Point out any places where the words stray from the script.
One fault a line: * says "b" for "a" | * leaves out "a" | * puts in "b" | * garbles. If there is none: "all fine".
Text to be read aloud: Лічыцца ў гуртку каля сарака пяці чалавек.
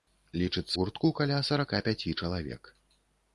* leaves out "ў"